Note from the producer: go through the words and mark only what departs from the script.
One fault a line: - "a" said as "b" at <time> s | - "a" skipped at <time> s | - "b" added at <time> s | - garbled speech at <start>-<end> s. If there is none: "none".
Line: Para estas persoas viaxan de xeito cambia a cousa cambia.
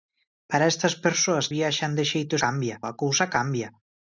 none